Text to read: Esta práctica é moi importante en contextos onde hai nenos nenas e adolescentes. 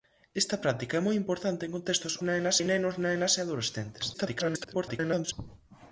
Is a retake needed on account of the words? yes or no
yes